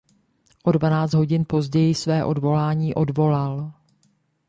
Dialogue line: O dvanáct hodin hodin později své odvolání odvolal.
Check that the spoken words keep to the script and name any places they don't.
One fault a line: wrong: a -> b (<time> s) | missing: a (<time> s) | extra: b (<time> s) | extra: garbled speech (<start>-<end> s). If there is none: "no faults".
missing: hodin (1.5 s)